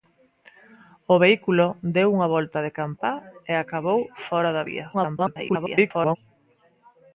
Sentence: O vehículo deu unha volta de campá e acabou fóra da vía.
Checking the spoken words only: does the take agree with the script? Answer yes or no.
no